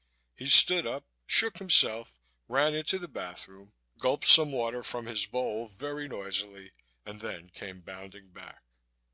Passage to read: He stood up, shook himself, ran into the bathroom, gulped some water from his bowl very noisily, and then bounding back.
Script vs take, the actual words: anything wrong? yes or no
yes